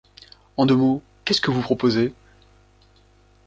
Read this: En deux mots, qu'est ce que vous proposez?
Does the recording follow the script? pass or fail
pass